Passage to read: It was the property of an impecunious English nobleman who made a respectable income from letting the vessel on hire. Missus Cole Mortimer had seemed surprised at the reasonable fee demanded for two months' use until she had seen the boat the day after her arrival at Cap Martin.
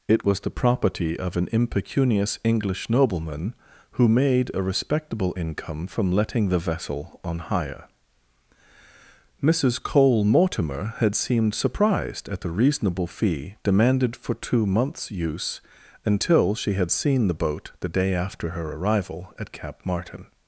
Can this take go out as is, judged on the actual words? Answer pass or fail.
pass